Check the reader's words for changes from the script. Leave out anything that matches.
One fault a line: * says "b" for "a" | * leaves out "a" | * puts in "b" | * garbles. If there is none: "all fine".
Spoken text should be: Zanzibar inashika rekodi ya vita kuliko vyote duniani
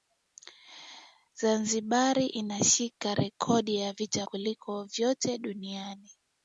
all fine